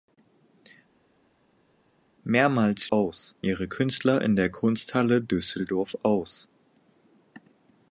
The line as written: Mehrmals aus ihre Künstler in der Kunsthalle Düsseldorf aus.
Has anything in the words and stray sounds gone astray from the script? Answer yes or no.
no